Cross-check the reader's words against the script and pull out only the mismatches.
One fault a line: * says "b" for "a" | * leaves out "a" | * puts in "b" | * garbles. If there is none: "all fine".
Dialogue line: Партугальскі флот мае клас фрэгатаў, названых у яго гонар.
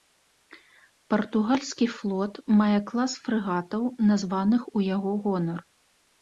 all fine